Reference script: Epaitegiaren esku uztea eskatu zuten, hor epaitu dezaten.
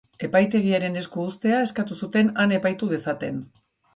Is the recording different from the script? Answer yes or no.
yes